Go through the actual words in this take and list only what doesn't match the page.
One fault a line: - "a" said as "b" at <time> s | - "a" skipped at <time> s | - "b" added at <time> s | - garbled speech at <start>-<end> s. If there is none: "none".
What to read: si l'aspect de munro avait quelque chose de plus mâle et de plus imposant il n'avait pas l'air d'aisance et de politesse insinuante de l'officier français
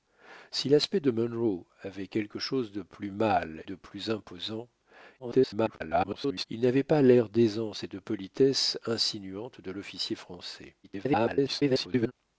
- "et" skipped at 3.6 s
- garbled speech at 5.2-6.4 s
- garbled speech at 10.8-12.1 s